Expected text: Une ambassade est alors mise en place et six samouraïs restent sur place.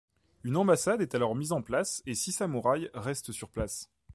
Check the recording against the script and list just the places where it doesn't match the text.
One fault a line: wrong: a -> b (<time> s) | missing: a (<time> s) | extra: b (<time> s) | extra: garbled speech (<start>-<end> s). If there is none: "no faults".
no faults